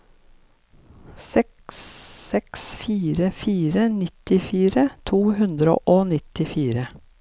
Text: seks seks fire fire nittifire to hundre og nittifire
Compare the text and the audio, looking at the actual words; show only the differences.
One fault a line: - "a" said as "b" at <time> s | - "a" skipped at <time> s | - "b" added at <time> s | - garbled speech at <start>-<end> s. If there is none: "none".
none